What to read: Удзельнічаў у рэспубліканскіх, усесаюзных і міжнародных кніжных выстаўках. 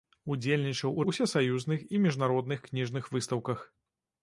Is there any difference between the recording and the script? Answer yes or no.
yes